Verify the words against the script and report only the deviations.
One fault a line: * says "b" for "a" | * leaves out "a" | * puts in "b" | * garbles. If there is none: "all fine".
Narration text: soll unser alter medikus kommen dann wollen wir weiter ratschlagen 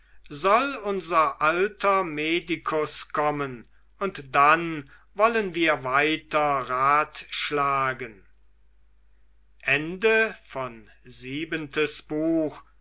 * puts in "und"